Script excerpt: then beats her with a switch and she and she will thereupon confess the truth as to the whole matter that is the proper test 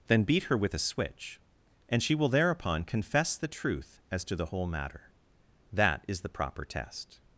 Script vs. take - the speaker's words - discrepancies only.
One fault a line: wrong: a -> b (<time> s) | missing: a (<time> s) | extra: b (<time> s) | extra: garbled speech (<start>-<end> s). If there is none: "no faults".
wrong: beats -> beat (0.2 s)
missing: and she (2.1 s)